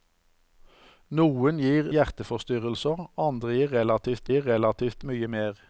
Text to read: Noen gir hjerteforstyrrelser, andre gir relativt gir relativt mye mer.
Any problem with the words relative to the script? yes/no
no